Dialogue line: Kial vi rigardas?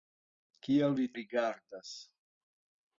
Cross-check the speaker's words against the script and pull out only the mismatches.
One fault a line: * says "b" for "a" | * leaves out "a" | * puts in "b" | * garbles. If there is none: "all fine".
all fine